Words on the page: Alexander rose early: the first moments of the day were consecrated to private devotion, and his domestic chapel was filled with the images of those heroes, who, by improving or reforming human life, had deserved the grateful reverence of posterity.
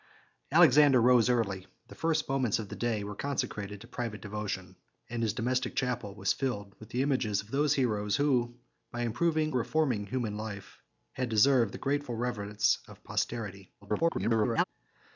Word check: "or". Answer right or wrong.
wrong